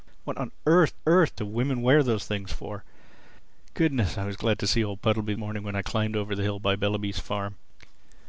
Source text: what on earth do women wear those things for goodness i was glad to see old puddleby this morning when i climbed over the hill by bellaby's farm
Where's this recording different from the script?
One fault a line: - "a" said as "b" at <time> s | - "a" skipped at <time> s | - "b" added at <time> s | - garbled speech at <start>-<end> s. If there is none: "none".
- "earth" added at 1.1 s
- "this" skipped at 5.3 s